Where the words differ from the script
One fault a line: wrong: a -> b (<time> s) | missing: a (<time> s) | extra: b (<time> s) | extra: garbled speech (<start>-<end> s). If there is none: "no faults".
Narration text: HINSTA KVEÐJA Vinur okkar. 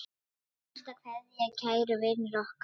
extra: Kæri (1.6 s)